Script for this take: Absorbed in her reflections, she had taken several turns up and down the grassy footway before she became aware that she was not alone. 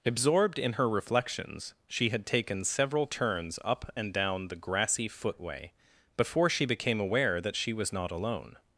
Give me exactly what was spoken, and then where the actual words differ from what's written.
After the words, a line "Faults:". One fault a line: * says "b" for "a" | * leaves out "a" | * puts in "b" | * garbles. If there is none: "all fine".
Absorbed in her reflections, she had taken several turns up and down the grassy footway before she became aware that she was not alone.
Faults:
all fine